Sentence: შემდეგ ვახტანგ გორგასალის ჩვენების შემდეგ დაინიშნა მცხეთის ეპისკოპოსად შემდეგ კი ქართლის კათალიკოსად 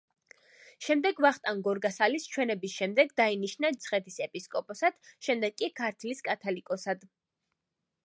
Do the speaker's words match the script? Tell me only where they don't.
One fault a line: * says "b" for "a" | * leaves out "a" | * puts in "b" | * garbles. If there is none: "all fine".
all fine